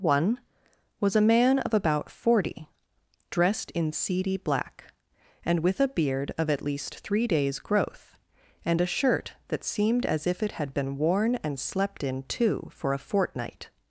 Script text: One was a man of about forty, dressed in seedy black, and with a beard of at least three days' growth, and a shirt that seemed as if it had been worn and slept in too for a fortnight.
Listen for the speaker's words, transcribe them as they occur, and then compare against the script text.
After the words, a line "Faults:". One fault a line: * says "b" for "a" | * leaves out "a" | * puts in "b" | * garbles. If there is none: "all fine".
One was a man of about forty, dressed in seedy black, and with a beard of at least three days' growth, and a shirt that seemed as if it had been worn and slept in too for a fortnight.
Faults:
all fine